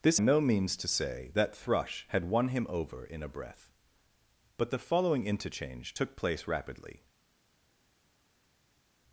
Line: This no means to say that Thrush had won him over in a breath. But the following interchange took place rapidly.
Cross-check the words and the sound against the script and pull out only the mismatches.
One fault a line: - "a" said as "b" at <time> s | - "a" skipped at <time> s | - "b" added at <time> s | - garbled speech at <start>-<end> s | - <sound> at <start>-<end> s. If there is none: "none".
none